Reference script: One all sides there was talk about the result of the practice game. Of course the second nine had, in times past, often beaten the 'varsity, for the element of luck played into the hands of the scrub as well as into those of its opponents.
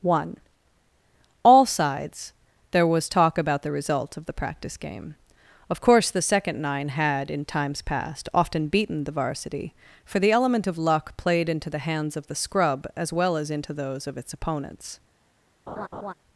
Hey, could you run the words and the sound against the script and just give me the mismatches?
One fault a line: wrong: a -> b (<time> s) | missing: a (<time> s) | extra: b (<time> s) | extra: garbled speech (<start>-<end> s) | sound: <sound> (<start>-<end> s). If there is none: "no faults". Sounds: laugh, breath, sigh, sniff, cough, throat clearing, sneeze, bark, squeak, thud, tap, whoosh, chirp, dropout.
sound: laugh (15.7-16.1 s)